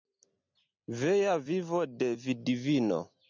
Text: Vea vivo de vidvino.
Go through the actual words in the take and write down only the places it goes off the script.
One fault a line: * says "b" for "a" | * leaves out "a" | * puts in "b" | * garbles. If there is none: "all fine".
all fine